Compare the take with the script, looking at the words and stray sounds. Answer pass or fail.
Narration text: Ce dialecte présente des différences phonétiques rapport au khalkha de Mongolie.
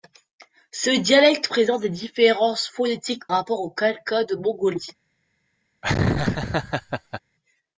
fail